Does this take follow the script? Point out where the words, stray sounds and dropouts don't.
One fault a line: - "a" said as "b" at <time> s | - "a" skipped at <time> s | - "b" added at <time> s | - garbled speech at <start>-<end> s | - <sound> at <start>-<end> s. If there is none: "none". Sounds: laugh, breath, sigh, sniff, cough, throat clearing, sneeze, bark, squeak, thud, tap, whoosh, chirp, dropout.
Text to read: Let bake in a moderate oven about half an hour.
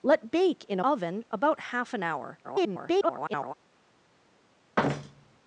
- "moderate" skipped at 0.8 s
- garbled speech at 2.4-3.5 s
- thud at 4.8-5.4 s